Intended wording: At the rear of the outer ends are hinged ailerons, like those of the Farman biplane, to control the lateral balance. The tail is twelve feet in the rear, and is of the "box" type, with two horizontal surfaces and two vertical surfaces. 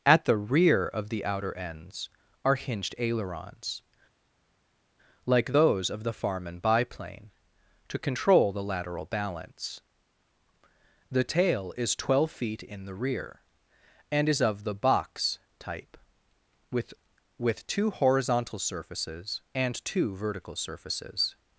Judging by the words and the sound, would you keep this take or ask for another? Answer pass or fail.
fail